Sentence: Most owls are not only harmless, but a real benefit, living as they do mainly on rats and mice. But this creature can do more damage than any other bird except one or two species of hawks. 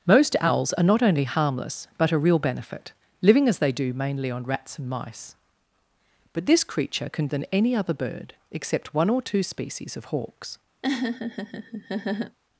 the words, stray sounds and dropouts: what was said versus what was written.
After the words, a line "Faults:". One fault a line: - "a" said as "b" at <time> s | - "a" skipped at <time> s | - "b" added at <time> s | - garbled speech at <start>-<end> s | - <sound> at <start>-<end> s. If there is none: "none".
Most owls are not only harmless, but a real benefit, living as they do mainly on rats and mice. But this creature can than any other bird except one or two species of hawks.
Faults:
- "do more damage" skipped at 7.3 s
- laugh at 10.8-12.4 s